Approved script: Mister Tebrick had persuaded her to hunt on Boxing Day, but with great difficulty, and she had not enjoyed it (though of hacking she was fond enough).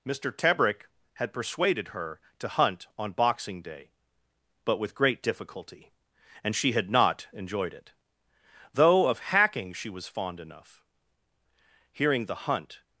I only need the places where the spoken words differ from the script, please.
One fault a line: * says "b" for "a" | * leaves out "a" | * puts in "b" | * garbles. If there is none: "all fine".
* puts in "Hearing the hunt"